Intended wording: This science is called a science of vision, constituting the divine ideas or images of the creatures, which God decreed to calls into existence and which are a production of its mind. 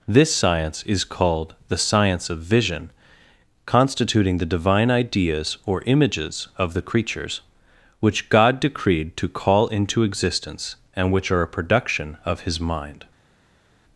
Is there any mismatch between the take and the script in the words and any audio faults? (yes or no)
yes